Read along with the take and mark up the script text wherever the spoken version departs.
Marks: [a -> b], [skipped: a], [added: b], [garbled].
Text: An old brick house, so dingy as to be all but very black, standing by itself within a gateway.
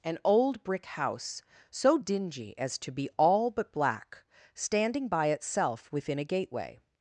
An old brick house, so dingy as to be all but [skipped: very] black, standing by itself within a gateway.